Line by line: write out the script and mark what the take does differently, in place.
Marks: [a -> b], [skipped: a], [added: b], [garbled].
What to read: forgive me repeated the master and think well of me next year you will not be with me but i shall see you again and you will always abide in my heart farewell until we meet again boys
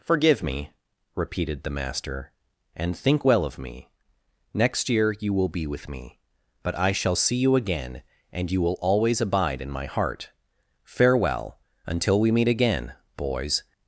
forgive me repeated the master and think well of me next year you will [skipped: not] be with me but i shall see you again and you will always abide in my heart farewell until we meet again boys